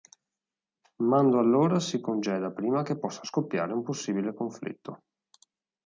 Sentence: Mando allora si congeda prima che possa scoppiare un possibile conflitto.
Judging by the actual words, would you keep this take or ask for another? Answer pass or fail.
pass